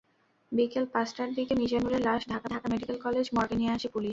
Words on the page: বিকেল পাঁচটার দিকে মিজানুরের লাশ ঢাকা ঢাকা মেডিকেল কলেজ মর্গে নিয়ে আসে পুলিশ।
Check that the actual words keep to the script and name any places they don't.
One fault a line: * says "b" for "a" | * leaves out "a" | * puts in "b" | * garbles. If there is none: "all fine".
all fine